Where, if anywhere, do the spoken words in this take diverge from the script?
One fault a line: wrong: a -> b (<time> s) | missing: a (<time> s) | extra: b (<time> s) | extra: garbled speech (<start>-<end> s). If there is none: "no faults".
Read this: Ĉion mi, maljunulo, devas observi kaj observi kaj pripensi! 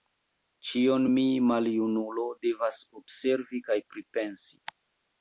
missing: observi kaj (3.8 s)